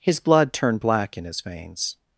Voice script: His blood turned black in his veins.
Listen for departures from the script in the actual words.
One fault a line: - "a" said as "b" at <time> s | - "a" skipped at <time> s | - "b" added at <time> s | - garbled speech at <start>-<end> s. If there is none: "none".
none